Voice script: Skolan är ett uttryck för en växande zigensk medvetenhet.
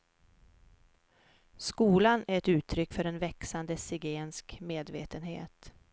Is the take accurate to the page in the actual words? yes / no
yes